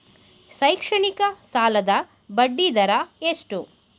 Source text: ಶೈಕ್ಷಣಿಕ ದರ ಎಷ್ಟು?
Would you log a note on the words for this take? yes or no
yes